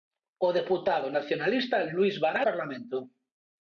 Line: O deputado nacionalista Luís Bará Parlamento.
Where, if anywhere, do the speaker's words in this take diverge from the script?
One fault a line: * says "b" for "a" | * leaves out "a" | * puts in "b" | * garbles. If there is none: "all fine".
all fine